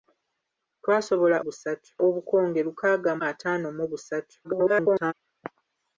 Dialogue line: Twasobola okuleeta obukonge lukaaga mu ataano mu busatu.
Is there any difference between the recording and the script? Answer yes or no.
yes